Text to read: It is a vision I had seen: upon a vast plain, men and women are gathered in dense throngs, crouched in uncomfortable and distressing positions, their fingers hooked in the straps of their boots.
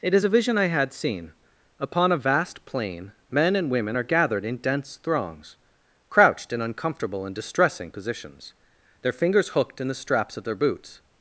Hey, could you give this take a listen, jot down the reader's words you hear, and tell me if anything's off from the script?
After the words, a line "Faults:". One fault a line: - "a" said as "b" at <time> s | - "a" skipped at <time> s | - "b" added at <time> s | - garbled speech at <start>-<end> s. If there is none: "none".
It is a vision I had seen: upon a vast plain, men and women are gathered in dense throngs, crouched in uncomfortable and distressing positions, their fingers hooked in the straps of their boots.
Faults:
none